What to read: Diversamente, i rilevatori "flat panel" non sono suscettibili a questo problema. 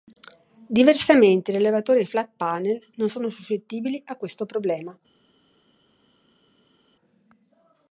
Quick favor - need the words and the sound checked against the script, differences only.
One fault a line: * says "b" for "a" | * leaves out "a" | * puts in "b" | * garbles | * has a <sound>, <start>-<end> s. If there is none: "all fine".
all fine